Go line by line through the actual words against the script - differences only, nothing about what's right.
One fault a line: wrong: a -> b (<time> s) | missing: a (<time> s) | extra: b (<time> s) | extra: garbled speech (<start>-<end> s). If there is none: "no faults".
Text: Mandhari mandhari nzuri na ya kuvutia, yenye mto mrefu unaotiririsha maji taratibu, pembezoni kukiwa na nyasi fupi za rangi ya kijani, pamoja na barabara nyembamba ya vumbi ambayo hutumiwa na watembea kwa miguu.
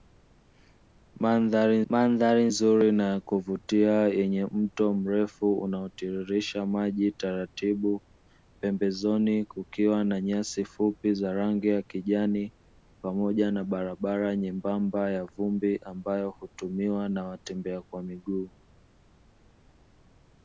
no faults